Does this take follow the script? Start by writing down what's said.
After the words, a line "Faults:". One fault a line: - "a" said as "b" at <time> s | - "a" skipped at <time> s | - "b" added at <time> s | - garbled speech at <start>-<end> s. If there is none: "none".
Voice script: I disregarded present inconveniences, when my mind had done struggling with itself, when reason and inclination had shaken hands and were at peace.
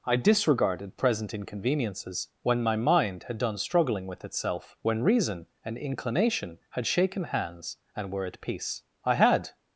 I disregarded present inconveniences, when my mind had done struggling with itself, when reason and inclination had shaken hands and were at peace. I had
Faults:
- "I had" added at 9.0 s